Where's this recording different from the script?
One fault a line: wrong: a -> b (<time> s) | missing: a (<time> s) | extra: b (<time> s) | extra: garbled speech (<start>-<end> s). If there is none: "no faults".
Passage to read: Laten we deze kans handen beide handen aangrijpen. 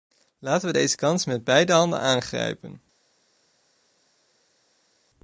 wrong: handen -> met (1.3 s)